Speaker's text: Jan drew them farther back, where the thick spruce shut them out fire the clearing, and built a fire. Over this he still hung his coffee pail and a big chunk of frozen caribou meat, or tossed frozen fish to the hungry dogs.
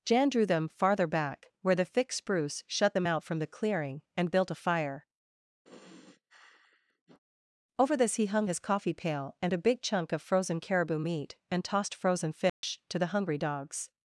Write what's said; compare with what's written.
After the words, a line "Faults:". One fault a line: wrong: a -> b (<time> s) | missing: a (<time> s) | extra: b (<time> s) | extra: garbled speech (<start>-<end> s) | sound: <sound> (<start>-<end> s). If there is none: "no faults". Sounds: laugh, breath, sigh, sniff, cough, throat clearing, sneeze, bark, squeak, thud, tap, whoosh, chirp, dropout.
Jan drew them farther back, where the thick spruce shut them out from the clearing, and built a fire. Over this he hung his coffee pail and a big chunk of frozen caribou meat, and tossed frozen fish to the hungry dogs.
Faults:
wrong: fire -> from (3.2 s)
sound: sigh (5.6-7.2 s)
missing: still (8.3 s)
wrong: or -> and (11.5 s)
sound: dropout (12.5-12.6 s)